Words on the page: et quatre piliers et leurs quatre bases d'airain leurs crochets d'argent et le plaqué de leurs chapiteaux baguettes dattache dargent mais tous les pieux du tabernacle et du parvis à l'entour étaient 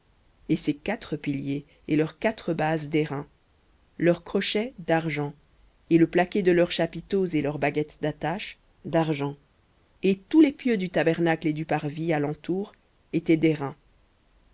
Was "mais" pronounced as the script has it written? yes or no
no